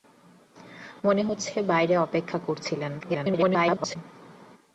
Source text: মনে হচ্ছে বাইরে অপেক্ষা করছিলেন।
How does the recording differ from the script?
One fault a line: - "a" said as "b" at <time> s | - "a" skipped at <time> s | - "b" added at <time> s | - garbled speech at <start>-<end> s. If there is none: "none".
- garbled speech at 3.0-4.0 s